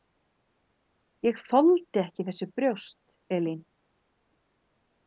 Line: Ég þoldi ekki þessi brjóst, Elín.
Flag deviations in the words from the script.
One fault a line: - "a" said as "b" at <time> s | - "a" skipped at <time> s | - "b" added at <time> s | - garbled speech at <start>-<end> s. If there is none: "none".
none